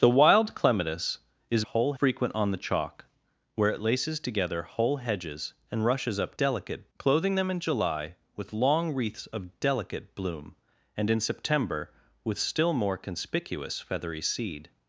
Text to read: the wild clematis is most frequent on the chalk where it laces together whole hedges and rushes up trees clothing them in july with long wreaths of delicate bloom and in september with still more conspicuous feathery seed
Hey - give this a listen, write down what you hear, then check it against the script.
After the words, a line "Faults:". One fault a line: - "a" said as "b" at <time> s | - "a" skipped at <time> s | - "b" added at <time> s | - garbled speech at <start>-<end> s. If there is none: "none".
the wild clematis is whole frequent on the chalk where it laces together whole hedges and rushes up delicate clothing them in july with long wreaths of delicate bloom and in september with still more conspicuous feathery seed
Faults:
- "most" said as "whole" at 1.6 s
- "trees" said as "delicate" at 6.4 s